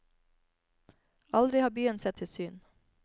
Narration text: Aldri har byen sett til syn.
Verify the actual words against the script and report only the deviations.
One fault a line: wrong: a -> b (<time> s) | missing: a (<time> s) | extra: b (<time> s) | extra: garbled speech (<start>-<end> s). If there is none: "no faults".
no faults